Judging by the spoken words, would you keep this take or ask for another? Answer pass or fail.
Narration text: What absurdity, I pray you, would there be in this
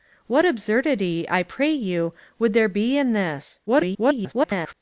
fail